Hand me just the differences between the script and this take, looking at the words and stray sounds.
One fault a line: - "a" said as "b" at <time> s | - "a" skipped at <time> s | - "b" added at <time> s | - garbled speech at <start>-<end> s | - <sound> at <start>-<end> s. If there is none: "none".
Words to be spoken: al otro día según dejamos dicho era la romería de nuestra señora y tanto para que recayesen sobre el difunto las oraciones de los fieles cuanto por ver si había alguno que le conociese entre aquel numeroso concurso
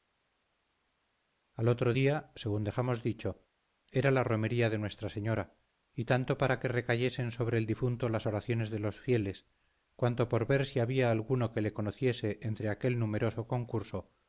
none